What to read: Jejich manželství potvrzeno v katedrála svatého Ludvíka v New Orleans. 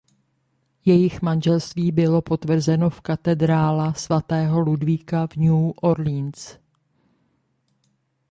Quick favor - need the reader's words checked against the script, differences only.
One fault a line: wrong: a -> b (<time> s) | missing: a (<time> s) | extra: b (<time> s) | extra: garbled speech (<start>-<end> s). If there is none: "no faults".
extra: bylo (1.9 s)